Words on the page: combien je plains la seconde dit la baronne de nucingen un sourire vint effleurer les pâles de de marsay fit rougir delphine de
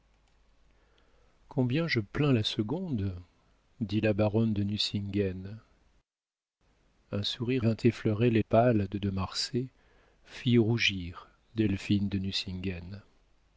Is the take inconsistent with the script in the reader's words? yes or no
no